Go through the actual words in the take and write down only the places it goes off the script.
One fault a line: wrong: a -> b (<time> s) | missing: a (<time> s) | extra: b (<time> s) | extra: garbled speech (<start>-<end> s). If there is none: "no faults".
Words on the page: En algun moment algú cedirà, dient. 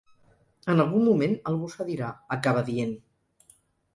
extra: acaba (2.4 s)